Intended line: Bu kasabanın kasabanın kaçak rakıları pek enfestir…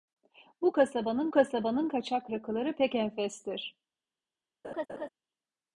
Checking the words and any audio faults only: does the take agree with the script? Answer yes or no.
no